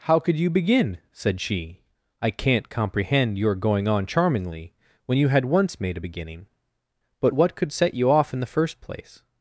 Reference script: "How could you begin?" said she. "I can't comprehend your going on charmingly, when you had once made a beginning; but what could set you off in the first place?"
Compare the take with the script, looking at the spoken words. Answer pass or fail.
pass